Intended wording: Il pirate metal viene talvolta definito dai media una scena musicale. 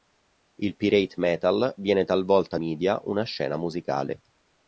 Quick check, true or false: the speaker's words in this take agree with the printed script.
false